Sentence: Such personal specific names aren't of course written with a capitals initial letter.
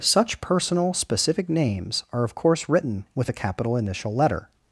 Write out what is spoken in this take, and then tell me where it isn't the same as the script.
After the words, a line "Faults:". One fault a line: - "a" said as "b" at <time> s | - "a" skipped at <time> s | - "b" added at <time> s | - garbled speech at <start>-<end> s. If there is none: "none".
Such personal specific names are of course written with a capital initial letter.
Faults:
- "aren't" said as "are" at 2.1 s
- "capitals" said as "capital" at 3.3 s